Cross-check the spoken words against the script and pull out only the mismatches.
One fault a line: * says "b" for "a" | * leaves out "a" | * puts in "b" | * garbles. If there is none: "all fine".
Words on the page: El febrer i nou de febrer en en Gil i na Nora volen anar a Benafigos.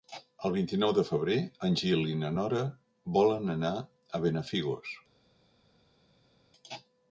* says "vint" for "febrer"
* leaves out "en"